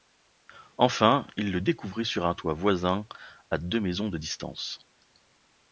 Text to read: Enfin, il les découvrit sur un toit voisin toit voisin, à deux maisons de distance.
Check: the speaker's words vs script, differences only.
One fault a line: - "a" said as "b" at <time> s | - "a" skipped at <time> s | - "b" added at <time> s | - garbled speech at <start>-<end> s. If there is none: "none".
- "les" said as "le" at 1.5 s
- "toit voisin" skipped at 3.0 s